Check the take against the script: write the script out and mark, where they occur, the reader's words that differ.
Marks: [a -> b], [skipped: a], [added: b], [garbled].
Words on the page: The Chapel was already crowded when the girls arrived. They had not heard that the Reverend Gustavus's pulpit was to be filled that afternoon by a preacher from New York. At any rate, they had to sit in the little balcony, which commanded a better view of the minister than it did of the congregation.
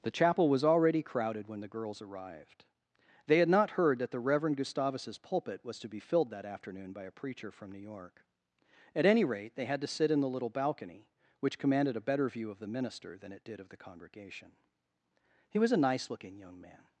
The Chapel was already crowded when the girls arrived. They had not heard that the Reverend Gustavus's pulpit was to be filled that afternoon by a preacher from New York. At any rate, they had to sit in the little balcony, which commanded a better view of the minister than it did of the congregation. [added: He was a nice looking young man]